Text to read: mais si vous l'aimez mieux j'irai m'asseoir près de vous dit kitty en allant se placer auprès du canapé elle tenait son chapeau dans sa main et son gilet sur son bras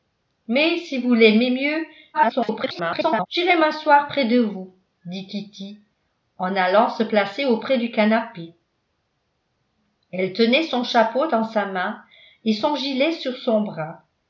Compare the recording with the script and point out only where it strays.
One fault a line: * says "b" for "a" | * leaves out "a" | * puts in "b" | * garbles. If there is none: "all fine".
* garbles